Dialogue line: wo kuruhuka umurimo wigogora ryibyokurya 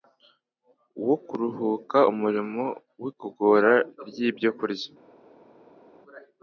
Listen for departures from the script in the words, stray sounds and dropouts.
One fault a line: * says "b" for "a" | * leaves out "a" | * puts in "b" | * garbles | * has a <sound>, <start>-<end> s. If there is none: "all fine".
all fine